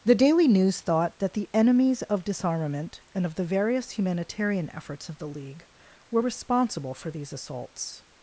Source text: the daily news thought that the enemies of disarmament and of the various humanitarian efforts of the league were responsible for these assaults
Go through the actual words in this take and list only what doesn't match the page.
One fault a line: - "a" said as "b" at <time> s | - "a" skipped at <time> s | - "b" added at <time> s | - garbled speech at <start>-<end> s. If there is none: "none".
none